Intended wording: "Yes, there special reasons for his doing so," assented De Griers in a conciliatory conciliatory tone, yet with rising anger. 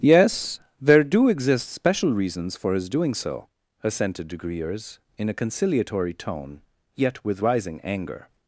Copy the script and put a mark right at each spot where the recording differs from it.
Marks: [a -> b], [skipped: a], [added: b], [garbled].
"Yes, there [added: do exist] special reasons for his doing so," assented De Griers in a conciliatory [skipped: conciliatory] tone, yet with rising anger.